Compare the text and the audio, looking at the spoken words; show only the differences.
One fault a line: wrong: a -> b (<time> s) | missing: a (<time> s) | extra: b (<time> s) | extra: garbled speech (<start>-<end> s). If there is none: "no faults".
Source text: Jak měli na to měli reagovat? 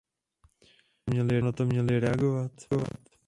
no faults